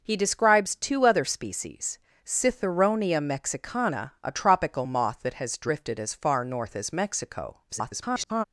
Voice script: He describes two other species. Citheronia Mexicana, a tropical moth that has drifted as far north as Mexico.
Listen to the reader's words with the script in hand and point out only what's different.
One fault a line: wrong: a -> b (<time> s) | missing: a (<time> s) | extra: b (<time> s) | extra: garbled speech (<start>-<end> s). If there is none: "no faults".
extra: garbled speech (7.7-8.4 s)